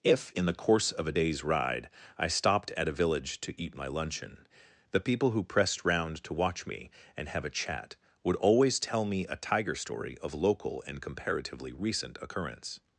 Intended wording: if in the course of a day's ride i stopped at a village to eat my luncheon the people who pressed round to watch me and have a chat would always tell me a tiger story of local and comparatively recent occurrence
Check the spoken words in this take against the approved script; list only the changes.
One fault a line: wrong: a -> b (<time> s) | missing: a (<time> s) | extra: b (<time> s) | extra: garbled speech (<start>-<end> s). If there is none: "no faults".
no faults